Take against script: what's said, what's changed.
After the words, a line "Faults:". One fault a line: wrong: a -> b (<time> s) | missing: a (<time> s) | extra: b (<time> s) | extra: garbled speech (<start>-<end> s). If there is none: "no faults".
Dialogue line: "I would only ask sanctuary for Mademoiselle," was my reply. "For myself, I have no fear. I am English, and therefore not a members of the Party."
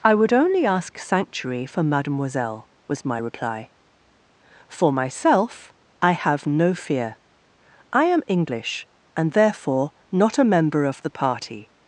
"I would only ask sanctuary for Mademoiselle," was my reply. "For myself, I have no fear. I am English, and therefore not a member of the Party."
Faults:
wrong: members -> member (10.4 s)